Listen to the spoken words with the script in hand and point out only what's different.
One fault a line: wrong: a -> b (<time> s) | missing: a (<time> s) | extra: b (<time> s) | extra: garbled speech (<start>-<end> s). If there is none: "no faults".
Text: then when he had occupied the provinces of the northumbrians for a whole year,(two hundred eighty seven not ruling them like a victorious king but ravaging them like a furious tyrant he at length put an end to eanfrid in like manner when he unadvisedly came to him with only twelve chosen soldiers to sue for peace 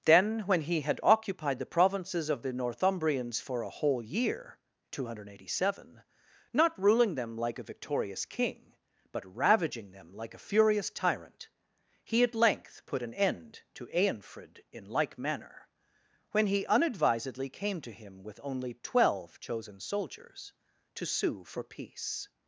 no faults